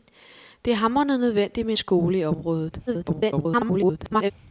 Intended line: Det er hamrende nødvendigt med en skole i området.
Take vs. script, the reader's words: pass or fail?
fail